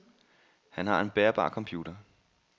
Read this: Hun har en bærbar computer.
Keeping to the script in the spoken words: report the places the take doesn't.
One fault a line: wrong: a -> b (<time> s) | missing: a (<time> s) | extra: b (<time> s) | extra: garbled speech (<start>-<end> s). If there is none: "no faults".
wrong: Hun -> Han (0.7 s)